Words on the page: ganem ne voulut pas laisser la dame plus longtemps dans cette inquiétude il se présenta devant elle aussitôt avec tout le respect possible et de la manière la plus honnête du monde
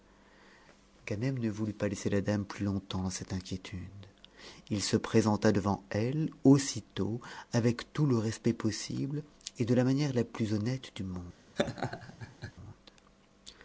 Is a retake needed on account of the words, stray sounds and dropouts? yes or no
yes